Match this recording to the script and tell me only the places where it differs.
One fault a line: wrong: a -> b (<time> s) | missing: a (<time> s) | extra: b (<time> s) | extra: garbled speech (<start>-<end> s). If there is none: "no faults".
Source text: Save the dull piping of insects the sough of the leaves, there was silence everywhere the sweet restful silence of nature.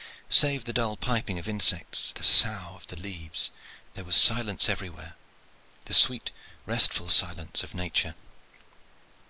no faults